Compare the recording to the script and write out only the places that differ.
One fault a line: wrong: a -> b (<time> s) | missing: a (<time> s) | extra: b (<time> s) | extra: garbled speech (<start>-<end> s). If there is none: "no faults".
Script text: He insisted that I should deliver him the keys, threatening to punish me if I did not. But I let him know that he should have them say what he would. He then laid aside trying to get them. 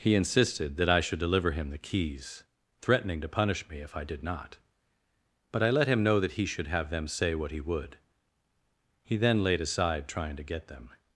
no faults